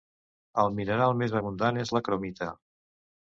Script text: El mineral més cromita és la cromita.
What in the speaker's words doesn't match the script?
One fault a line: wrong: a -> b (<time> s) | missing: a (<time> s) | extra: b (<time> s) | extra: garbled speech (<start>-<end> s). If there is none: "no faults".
wrong: cromita -> abundant (1.4 s)